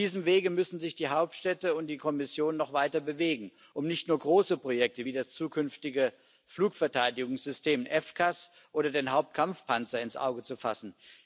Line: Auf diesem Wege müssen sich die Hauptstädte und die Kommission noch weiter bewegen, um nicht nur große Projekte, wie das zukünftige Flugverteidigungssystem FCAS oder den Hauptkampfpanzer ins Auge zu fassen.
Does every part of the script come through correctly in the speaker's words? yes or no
yes